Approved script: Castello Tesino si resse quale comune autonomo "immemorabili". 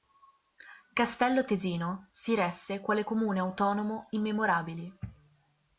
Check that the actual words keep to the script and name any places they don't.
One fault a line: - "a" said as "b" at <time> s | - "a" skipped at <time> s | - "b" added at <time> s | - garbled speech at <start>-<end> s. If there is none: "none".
none